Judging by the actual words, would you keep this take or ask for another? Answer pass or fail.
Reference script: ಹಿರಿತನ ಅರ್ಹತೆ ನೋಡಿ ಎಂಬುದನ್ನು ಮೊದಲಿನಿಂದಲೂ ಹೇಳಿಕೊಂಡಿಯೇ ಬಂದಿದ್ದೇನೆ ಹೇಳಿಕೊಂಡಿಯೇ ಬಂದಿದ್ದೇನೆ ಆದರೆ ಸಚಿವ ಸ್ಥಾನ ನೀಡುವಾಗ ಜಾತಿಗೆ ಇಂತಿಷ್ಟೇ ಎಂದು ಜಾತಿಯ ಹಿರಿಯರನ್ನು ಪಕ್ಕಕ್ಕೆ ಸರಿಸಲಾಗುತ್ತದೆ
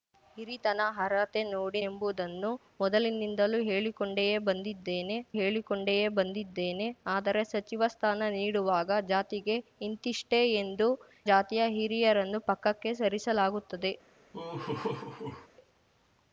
pass